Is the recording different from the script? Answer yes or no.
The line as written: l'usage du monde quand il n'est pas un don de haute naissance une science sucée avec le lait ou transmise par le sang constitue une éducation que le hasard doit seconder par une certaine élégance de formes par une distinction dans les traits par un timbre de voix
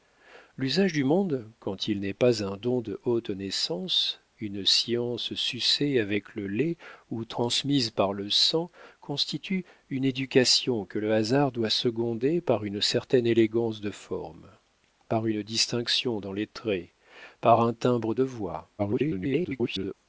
yes